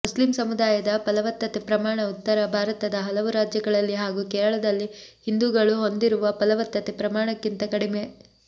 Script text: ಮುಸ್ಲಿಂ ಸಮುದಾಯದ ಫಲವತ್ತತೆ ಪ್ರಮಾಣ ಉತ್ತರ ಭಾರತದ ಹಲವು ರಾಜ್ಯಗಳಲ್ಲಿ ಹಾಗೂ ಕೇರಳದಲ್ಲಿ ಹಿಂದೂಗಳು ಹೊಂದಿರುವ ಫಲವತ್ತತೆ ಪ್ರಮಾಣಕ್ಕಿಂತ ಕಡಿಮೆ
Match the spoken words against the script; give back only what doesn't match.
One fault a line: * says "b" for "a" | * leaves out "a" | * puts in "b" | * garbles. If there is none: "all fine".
all fine